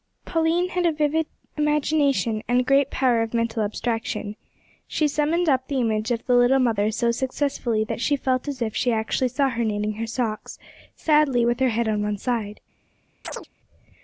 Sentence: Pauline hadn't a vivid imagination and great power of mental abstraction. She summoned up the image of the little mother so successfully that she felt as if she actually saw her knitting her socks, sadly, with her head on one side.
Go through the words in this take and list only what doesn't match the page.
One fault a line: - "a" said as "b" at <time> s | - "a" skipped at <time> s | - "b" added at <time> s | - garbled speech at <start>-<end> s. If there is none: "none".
- "hadn't" said as "had" at 0.7 s